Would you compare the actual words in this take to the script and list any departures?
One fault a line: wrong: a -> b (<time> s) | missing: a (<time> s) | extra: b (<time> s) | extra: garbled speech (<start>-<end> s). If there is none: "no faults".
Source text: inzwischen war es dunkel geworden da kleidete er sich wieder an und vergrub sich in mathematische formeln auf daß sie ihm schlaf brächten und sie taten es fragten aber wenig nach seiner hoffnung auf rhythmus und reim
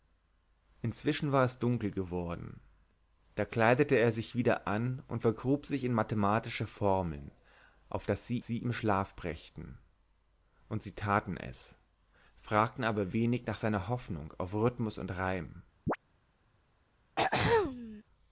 extra: sie (8.4 s)